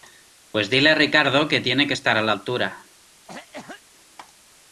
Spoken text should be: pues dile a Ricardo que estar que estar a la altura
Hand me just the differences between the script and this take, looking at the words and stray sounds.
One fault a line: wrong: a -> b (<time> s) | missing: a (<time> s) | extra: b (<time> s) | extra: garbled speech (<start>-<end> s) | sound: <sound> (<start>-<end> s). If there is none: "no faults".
wrong: estar -> tiene (1.6 s)
sound: cough (3.3-3.8 s)